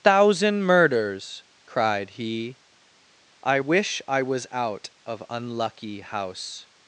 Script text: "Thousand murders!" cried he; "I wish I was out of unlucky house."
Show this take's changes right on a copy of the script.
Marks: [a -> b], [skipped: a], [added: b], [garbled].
"Thousand murders!" cried he; "I wish I was out of unlucky house."